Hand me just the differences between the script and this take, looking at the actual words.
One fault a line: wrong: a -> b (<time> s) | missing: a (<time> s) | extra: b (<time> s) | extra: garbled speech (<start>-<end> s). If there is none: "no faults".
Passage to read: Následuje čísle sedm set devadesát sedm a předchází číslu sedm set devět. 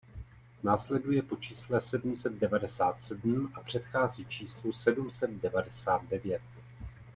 extra: po (1.2 s)
extra: devadesát (5.3 s)